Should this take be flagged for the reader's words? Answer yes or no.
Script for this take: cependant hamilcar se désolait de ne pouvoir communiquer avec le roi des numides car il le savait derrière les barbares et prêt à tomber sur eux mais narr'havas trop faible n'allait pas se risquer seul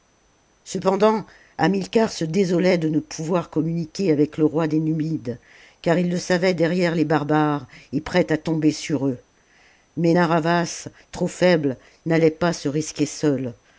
no